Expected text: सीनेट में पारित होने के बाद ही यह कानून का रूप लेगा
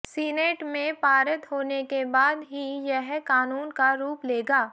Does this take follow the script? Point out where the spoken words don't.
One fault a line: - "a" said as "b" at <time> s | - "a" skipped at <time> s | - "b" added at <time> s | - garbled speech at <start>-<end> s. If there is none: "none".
none